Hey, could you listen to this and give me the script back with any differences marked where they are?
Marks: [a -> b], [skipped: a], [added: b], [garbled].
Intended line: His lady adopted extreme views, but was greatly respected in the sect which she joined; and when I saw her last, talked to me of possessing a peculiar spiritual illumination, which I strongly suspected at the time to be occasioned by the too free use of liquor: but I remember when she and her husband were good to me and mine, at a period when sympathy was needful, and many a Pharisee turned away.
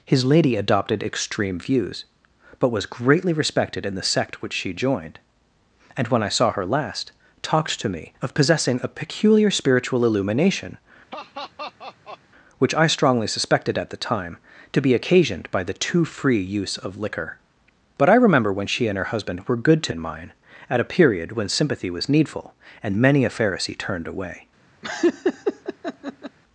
His lady adopted extreme views, but was greatly respected in the sect which she joined; and when I saw her last, talked to me of possessing a peculiar spiritual illumination, which I strongly suspected at the time to be occasioned by the too free use of liquor: but I remember when she and her husband were good to [skipped: me] and mine, at a period when sympathy was needful, and many a Pharisee turned away.